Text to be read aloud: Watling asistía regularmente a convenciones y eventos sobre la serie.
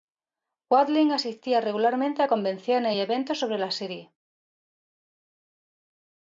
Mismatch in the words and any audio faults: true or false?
false